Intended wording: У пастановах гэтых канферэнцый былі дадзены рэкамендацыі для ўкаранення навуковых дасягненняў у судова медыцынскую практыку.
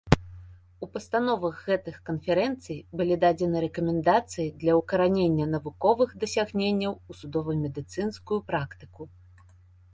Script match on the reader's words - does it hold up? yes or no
yes